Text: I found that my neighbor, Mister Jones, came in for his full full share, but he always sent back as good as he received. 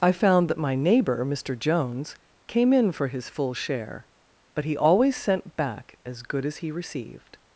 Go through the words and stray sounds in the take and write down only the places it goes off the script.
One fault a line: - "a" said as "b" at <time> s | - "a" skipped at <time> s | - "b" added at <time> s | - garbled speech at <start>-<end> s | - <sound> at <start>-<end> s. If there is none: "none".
- "full" skipped at 3.5 s